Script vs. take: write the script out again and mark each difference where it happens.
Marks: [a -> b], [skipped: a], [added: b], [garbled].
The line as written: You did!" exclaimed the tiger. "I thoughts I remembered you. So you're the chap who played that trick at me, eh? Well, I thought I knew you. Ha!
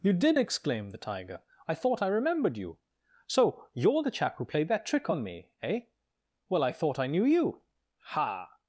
You did!" exclaimed the tiger. "I [thoughts -> thought] I remembered you. So you're the chap who played that trick [at -> on] me, eh? Well, I thought I knew you. Ha!